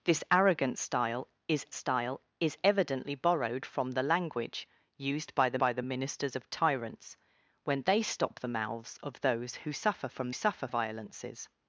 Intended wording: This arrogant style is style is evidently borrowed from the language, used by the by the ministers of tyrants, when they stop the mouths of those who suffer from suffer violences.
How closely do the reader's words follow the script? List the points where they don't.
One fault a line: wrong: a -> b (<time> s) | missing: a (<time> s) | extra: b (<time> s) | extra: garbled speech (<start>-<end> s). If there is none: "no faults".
no faults